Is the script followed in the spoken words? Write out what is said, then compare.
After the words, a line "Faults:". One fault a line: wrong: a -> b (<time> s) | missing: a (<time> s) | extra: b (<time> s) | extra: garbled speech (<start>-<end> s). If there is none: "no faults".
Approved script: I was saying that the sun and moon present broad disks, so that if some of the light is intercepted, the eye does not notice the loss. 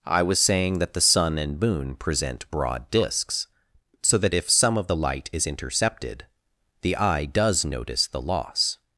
I was saying that the sun and moon present broad disks, so that if some of the light is intercepted, the eye does notice the loss.
Faults:
missing: not (7.6 s)